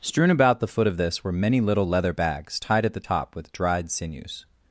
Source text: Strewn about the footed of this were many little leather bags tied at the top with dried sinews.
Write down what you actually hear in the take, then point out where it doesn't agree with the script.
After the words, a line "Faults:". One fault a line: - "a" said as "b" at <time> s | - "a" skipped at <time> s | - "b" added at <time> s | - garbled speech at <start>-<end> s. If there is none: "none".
Strewn about the foot of this were many little leather bags tied at the top with dried sinews.
Faults:
- "footed" said as "foot" at 0.7 s